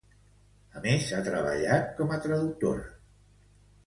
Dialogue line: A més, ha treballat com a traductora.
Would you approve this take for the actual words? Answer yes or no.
yes